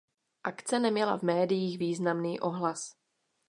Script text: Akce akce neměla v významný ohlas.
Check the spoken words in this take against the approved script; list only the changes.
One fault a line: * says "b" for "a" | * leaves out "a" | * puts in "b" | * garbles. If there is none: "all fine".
* leaves out "akce"
* puts in "médiích"